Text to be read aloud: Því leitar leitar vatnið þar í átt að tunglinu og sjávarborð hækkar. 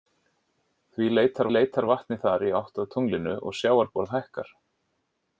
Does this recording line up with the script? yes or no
yes